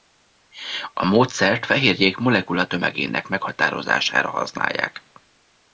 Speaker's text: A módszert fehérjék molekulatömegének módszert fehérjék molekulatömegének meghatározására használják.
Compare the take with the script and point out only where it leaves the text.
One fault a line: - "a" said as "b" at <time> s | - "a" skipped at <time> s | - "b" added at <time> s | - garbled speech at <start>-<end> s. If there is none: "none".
- "módszert fehérjék molekulatömegének" skipped at 3.3 s